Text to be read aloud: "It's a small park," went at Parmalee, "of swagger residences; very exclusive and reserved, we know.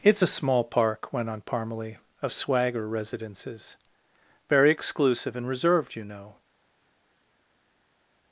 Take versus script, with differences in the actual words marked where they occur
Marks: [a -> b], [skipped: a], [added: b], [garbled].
"It's a small park," went [at -> on] Parmalee, "of swagger residences; very exclusive and reserved, [we -> you] know.